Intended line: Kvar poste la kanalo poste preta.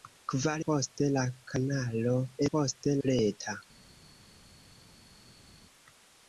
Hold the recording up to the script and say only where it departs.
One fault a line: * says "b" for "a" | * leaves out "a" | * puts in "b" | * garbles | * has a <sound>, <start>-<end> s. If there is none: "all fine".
all fine